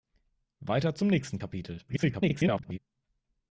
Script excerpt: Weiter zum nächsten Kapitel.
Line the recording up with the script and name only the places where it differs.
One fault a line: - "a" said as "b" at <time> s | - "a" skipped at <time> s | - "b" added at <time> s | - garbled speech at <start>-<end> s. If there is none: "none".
- garbled speech at 1.9-2.8 s